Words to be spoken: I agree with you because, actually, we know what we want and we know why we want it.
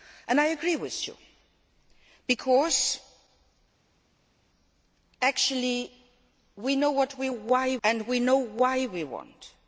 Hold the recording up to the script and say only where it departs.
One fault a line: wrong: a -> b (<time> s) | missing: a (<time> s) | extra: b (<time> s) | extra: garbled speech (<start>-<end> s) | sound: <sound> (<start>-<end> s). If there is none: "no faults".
wrong: want -> why (7.3 s)